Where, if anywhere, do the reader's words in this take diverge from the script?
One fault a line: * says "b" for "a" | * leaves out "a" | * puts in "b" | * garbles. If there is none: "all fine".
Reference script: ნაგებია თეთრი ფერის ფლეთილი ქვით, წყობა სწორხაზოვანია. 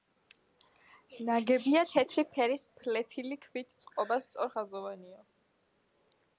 all fine